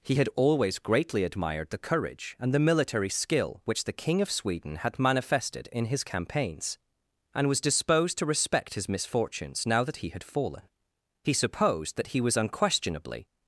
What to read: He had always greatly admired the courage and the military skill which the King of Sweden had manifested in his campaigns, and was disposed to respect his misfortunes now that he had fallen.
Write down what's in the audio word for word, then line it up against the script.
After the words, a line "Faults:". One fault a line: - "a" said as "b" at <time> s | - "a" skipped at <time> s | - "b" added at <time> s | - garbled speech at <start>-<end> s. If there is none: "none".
He had always greatly admired the courage and the military skill which the King of Sweden had manifested in his campaigns, and was disposed to respect his misfortunes now that he had fallen. He supposed that he was unquestionably
Faults:
- "He supposed that he was unquestionably" added at 11.2 s